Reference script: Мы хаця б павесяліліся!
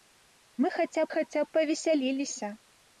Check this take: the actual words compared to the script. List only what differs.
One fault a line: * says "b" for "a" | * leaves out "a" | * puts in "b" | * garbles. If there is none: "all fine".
* puts in "хаця"